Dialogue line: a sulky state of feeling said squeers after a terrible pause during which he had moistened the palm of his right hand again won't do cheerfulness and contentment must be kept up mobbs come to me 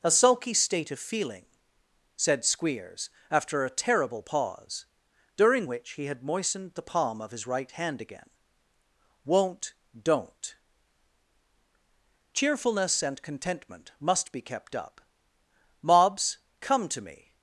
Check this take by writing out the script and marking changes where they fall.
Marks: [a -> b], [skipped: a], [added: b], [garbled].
a sulky state of feeling said squeers after a terrible pause during which he had moistened the palm of his right hand again won't [do -> don't] cheerfulness and contentment must be kept up mobbs come to me